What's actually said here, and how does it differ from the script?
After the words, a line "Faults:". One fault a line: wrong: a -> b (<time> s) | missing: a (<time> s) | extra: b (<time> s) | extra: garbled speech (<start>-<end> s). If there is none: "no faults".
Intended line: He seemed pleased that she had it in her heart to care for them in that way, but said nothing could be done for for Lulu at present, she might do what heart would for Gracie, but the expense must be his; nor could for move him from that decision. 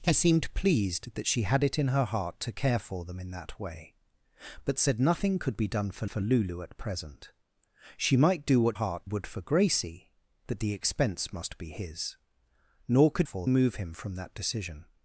He seemed pleased that she had it in her heart to care for them in that way, but said nothing could be done for for Lulu at present, she might do what heart would for Gracie, but the expense must be his; nor could for move him from that decision.
Faults:
no faults